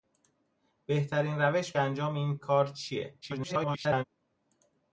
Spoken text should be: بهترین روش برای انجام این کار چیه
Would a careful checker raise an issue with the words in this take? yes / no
yes